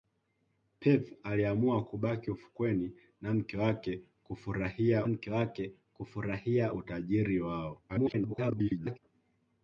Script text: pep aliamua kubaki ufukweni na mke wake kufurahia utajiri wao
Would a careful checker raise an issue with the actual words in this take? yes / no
yes